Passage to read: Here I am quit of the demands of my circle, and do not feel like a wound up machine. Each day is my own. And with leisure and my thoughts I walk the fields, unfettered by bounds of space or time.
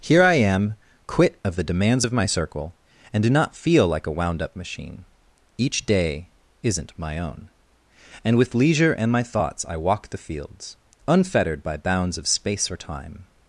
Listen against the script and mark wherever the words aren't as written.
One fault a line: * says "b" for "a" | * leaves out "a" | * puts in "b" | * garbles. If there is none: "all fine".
* says "isn't" for "is"